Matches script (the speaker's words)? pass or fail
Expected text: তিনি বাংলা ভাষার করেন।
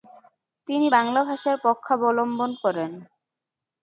fail